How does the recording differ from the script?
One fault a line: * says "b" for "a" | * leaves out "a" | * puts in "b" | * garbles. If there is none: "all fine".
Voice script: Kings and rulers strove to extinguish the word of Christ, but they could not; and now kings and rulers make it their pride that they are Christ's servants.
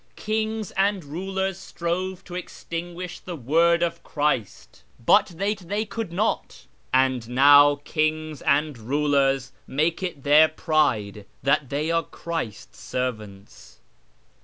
* puts in "they"